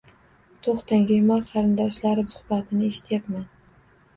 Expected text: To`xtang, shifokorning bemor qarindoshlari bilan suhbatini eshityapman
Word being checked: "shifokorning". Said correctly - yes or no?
no